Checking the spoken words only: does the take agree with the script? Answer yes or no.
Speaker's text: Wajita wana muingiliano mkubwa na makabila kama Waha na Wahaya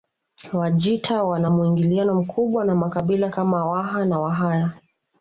yes